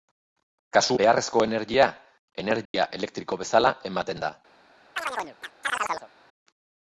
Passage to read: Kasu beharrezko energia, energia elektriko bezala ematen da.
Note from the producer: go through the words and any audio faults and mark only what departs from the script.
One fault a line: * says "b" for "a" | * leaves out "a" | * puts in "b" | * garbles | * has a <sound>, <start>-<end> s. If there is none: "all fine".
* has a dropout, 2.7-2.7 s
* has a chirp, 5.0-6.1 s